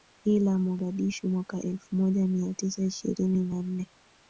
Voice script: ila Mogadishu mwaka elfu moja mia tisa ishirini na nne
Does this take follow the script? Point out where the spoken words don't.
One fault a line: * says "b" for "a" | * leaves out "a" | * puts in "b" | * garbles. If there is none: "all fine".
all fine